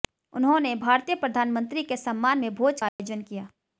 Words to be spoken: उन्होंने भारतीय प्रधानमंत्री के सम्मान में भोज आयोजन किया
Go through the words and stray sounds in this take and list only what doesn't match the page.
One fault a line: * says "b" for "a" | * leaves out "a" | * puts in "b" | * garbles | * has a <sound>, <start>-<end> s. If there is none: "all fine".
* has a dropout, 2.9-3.0 s